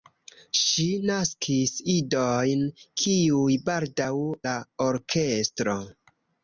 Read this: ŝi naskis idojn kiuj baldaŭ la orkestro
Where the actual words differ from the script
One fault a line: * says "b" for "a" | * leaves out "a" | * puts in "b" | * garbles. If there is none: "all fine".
all fine